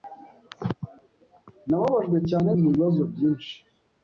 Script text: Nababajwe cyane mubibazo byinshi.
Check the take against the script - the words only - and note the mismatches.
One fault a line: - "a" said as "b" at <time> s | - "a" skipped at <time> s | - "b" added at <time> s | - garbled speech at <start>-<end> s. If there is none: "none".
none